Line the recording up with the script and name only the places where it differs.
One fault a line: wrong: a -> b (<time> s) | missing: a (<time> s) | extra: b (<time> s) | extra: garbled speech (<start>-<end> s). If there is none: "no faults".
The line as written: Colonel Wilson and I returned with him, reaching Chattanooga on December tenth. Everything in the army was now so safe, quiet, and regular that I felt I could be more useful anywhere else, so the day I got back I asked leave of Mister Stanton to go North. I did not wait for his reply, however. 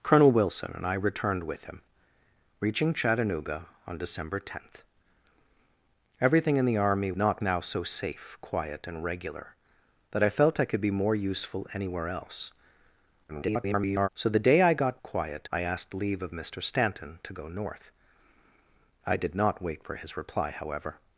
wrong: was -> not (7.2 s)
extra: garbled speech (13.3-14.1 s)
wrong: back -> quiet (15.0 s)